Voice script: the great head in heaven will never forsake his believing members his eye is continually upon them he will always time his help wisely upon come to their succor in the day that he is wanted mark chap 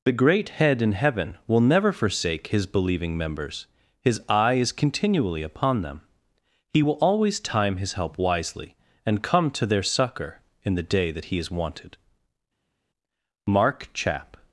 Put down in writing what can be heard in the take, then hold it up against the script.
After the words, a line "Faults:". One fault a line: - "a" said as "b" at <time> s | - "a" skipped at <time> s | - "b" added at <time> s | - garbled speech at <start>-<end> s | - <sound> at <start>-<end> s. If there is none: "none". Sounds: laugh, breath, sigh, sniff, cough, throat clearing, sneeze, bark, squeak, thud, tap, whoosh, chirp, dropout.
the great head in heaven will never forsake his believing members his eye is continually upon them he will always time his help wisely and come to their succor in the day that he is wanted mark chap
Faults:
- "upon" said as "and" at 9.1 s